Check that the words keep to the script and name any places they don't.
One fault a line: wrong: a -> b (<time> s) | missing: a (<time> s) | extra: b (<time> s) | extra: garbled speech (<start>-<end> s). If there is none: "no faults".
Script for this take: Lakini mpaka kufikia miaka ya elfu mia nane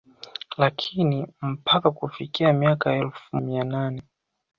no faults